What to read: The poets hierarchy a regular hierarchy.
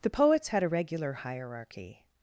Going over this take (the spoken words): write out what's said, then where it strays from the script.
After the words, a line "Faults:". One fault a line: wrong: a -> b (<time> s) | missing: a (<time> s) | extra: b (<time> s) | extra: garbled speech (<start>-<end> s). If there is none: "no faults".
The poets had a regular hierarchy.
Faults:
wrong: hierarchy -> had (0.5 s)